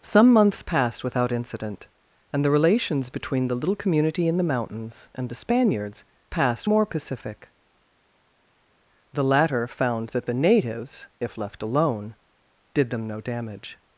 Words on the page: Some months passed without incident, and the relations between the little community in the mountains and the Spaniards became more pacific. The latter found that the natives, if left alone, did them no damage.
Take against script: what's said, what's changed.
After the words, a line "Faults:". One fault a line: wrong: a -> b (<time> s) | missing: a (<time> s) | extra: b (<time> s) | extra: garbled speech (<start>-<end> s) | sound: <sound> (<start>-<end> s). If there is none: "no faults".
Some months passed without incident, and the relations between the little community in the mountains and the Spaniards passed more pacific. The latter found that the natives, if left alone, did them no damage.
Faults:
wrong: became -> passed (6.3 s)